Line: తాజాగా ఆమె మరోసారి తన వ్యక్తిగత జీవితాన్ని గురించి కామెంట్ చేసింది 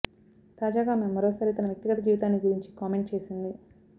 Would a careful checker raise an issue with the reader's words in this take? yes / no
no